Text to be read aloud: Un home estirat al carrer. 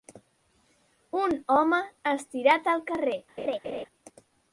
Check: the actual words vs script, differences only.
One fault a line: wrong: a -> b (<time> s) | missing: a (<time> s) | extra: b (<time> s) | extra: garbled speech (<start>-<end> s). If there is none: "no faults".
no faults